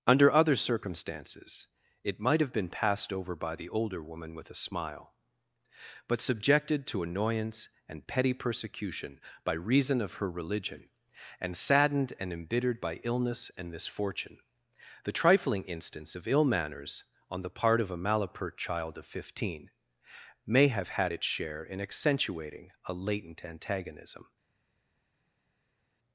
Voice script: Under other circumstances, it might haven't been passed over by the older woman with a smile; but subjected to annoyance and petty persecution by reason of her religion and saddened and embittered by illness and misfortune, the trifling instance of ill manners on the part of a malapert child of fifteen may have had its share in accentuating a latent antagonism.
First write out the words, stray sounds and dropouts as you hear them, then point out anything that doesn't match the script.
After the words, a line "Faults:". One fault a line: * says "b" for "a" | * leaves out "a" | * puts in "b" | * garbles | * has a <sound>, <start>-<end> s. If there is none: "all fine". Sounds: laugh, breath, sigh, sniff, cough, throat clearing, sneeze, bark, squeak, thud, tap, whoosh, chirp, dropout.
Under other circumstances, it might have been passed over by the older woman with a smile; but subjected to annoyance and petty persecution by reason of her religion and saddened and embittered by illness and misfortune, the trifling instance of ill manners on the part of a malapert child of fifteen may have had its share in accentuating a latent antagonism.
Faults:
* says "have" for "haven't"